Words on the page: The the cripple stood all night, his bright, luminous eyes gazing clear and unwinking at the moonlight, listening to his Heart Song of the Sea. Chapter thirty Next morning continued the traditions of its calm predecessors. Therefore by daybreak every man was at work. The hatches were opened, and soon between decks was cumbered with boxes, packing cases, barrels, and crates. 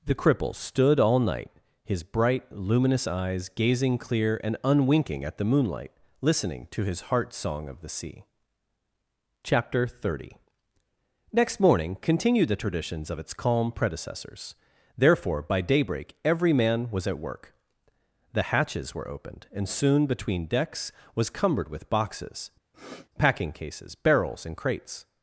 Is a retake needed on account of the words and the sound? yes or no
yes